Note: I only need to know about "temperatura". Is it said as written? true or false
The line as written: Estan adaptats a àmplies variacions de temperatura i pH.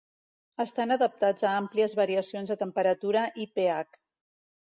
true